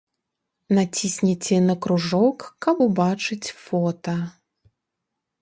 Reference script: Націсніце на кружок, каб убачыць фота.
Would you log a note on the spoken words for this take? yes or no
no